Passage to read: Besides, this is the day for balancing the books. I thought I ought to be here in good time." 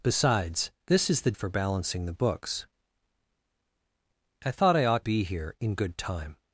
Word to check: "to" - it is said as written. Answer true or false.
false